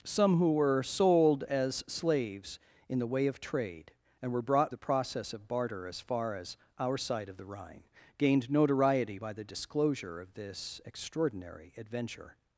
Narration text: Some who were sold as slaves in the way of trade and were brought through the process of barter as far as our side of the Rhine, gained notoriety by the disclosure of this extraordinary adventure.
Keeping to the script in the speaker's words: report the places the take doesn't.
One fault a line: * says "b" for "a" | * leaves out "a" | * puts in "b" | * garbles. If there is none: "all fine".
* leaves out "through"